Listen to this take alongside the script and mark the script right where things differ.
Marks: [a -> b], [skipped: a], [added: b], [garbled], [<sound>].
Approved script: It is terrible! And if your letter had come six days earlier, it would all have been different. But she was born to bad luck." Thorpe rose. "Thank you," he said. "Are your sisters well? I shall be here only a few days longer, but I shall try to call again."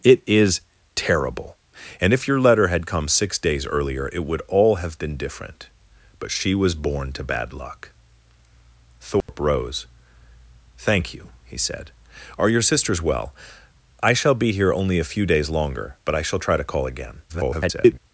It is terrible! And if your letter had come six days earlier, it would all have been different. But she was born to bad luck." Thorpe [dropout] rose. "Thank you," he said. "Are your sisters well? I shall be here only a few days longer, but I shall try to call again." [garbled]